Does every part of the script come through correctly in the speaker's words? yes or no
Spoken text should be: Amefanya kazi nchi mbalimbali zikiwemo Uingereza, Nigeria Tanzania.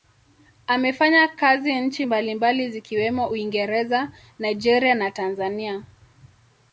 no